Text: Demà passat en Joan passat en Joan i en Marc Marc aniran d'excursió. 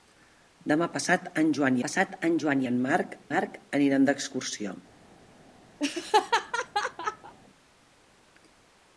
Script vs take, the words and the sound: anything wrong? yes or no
yes